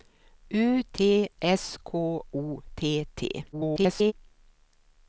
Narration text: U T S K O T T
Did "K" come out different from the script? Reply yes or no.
no